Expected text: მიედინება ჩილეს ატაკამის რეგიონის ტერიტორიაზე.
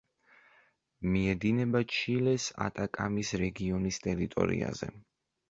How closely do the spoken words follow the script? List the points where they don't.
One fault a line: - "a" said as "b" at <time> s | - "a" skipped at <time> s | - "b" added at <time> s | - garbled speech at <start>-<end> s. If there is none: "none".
none